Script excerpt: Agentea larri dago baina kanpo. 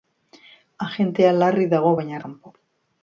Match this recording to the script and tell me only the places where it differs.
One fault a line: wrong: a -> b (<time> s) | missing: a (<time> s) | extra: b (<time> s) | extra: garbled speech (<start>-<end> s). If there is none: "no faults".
no faults